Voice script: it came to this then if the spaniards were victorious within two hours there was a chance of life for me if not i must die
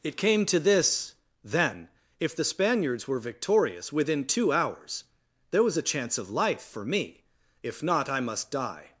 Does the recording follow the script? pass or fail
pass